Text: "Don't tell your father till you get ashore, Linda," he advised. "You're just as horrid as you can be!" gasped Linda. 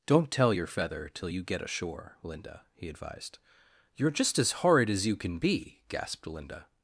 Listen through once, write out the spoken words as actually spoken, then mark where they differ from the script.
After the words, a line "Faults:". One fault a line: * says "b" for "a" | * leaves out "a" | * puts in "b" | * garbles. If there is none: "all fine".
"Don't tell your feather till you get ashore, Linda," he advised. "You're just as horrid as you can be!" gasped Linda.
Faults:
* says "feather" for "father"